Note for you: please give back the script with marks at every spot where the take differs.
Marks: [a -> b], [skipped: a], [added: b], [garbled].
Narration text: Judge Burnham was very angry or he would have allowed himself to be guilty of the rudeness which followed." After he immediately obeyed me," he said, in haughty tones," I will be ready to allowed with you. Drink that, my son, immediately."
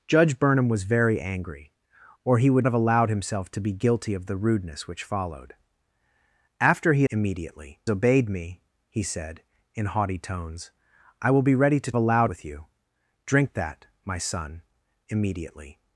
Judge Burnham was very angry or he would have allowed himself to be guilty of the rudeness which followed." After he immediately obeyed me," he said, in haughty tones," I will be ready to allowed with you. Drink that, my son, immediately."